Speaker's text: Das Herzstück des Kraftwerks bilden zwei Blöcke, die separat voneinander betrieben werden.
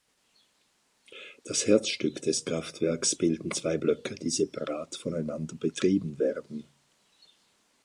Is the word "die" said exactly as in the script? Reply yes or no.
yes